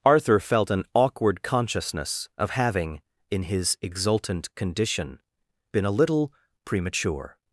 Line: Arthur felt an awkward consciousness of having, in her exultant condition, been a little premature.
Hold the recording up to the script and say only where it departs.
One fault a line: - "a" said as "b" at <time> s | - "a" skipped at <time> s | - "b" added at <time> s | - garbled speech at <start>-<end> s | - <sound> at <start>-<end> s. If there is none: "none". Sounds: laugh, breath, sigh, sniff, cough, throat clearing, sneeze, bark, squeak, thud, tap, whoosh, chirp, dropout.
- "her" said as "his" at 3.4 s